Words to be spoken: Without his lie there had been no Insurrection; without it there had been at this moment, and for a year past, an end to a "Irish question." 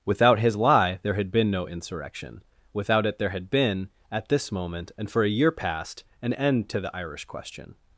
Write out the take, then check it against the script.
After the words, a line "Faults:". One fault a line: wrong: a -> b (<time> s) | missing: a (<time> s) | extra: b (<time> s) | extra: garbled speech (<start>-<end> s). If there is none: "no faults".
Without his lie there had been no Insurrection; without it there had been at this moment, and for a year past, an end to the "Irish question."
Faults:
wrong: a -> the (6.8 s)